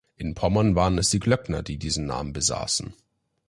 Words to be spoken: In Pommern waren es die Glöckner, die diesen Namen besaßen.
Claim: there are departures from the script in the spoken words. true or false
false